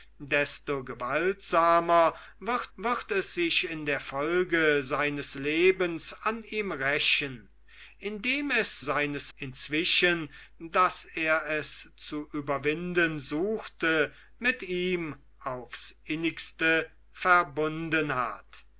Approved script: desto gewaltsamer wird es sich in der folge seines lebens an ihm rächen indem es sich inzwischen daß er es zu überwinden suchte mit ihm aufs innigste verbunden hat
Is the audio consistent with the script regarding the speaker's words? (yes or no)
no